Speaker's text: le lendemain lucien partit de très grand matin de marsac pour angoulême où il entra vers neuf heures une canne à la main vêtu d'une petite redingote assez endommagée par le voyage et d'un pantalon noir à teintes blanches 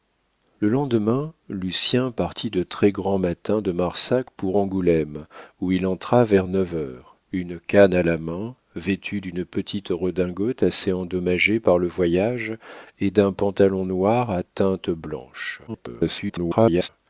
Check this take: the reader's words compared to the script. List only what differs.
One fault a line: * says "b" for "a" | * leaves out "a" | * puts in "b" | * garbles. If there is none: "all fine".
* garbles